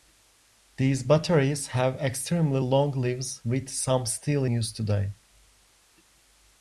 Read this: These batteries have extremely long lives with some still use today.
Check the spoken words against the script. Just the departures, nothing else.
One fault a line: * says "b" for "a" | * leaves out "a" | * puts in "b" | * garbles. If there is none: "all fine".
all fine